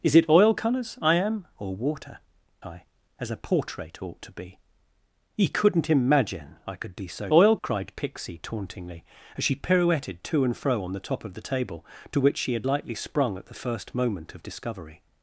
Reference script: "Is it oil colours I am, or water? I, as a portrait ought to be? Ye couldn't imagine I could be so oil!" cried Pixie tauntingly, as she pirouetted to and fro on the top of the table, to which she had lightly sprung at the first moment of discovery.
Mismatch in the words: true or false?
false